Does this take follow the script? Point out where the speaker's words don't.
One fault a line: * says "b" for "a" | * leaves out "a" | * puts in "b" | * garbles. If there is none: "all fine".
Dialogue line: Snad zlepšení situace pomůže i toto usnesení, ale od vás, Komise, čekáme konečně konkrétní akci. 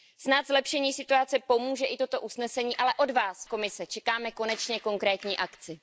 all fine